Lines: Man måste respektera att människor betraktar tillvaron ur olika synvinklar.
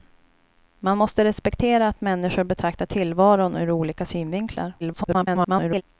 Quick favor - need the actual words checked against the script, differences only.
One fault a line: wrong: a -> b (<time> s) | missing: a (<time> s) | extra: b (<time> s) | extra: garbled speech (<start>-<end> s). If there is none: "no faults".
extra: garbled speech (4.8-5.8 s)